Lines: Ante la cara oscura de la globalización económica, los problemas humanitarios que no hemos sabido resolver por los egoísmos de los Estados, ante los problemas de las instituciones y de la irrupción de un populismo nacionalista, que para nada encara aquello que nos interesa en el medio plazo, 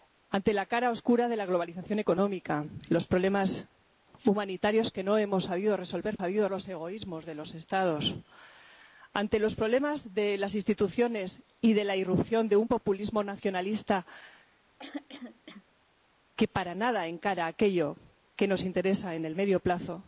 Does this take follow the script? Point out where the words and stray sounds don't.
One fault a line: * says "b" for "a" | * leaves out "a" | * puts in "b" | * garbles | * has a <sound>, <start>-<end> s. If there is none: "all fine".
* says "sabido" for "por"
* has a throat clearing, 14.8-15.6 s